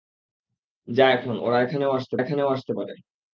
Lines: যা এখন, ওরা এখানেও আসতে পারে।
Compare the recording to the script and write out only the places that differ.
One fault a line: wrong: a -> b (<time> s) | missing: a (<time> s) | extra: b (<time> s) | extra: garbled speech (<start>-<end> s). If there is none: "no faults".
extra: এখানেও আসতে (2.2 s)